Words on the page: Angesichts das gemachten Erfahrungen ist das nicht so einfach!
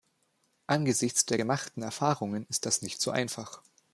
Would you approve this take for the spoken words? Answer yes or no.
no